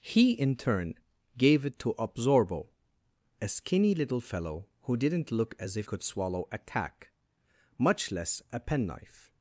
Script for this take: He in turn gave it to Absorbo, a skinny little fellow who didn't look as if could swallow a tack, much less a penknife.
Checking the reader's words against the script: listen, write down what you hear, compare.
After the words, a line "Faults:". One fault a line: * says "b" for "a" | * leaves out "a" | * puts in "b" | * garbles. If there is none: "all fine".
He in turn gave it to Absorbo, a skinny little fellow who didn't look as if could swallow a tack, much less a penknife.
Faults:
all fine